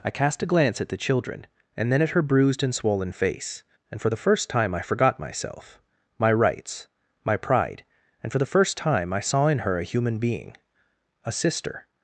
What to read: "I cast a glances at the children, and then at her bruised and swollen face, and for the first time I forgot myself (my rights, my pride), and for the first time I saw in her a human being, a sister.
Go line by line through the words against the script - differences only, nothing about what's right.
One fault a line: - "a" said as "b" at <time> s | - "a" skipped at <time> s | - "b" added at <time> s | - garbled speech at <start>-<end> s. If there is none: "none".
- "glances" said as "glance" at 0.5 s